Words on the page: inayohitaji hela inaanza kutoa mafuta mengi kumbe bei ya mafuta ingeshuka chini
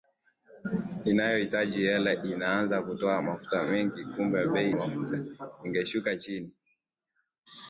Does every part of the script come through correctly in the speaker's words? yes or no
no